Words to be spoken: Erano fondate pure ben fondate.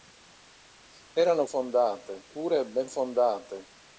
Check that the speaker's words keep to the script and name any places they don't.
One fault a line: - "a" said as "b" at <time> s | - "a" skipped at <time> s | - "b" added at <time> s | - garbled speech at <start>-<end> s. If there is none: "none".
none